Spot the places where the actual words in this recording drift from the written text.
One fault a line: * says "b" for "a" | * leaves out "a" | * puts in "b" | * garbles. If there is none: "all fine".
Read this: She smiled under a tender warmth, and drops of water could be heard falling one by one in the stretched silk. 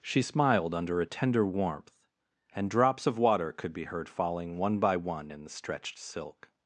all fine